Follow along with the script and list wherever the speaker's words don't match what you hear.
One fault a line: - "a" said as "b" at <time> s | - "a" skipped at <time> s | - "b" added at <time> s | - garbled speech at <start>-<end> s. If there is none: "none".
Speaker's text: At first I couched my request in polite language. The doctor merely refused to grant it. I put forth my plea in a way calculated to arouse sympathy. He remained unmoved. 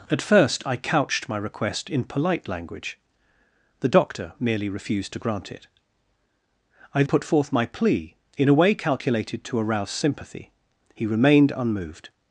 none